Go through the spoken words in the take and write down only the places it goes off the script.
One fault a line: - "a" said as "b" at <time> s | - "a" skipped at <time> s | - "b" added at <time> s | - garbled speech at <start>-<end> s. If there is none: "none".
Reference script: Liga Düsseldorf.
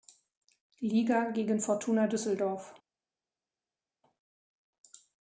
- "gegen Fortuna" added at 1.3 s